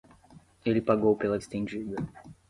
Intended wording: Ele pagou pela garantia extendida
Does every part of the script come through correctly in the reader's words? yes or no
no